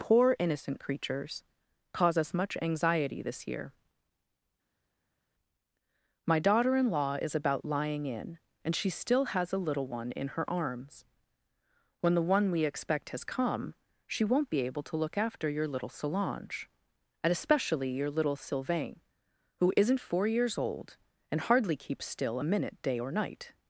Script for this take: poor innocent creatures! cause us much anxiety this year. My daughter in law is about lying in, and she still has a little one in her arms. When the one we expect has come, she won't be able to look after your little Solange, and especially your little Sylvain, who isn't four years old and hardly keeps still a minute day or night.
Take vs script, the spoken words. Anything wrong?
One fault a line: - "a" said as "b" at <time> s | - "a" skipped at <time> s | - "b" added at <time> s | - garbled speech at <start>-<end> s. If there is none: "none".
none